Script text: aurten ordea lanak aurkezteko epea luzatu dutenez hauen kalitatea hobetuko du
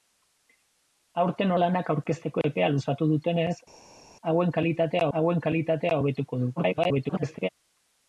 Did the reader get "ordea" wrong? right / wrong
wrong